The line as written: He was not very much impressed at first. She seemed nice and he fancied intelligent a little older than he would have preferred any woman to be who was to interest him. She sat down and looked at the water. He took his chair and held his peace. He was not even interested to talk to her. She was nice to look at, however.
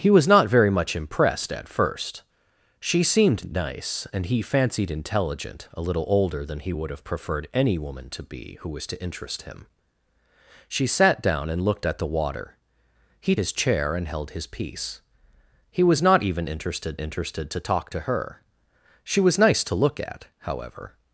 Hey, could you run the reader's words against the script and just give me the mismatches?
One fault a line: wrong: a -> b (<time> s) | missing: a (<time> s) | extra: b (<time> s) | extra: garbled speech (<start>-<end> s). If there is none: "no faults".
missing: took (13.3 s)
extra: interested (17.0 s)